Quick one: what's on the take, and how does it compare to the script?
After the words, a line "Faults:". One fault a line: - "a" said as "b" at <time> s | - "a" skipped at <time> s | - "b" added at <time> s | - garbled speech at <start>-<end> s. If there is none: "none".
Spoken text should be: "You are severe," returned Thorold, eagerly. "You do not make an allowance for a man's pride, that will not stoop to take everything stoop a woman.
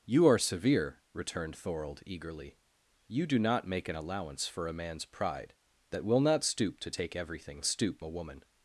"You are severe," returned Thorold, eagerly. "You do not make an allowance for a man's pride, that will not stoop to take everything stoop a woman.
Faults:
none